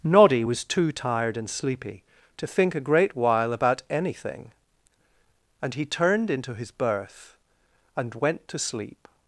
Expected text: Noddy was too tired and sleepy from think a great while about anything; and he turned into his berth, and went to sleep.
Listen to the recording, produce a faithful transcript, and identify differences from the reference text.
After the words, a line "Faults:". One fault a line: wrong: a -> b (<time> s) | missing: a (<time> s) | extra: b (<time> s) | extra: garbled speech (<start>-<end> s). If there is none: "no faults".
Noddy was too tired and sleepy to think a great while about anything; and he turned into his berth, and went to sleep.
Faults:
wrong: from -> to (2.4 s)